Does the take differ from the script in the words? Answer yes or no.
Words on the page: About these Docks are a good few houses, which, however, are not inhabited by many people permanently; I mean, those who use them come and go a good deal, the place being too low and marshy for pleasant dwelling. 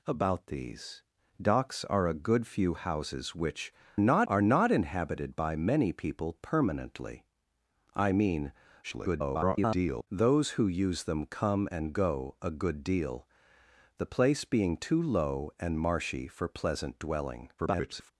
yes